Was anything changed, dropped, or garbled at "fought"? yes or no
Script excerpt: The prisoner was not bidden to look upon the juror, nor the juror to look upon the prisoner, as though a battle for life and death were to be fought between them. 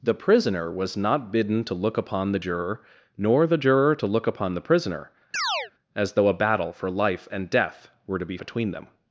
yes